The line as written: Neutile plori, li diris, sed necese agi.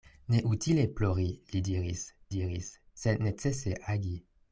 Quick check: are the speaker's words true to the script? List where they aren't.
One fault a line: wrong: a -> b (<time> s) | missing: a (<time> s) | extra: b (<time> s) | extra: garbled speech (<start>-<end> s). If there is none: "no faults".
extra: diris (2.3 s)